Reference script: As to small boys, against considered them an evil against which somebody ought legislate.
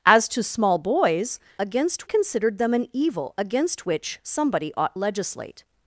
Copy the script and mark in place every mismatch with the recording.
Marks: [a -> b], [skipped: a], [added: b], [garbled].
As to small boys, against considered them an evil against which somebody ought legislate.